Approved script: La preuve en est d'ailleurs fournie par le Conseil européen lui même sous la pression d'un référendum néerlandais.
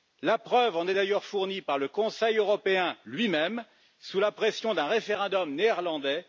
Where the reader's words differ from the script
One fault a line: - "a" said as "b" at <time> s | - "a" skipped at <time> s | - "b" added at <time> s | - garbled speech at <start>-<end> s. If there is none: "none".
none